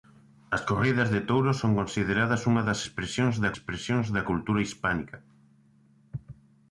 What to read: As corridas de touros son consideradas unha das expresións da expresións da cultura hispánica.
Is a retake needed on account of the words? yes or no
no